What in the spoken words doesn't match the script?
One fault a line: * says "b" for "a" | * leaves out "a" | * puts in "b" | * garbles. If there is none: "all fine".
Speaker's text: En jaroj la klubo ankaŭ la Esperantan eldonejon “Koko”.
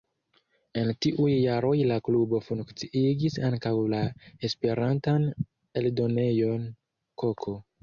* puts in "tiuj"
* puts in "funkciigis"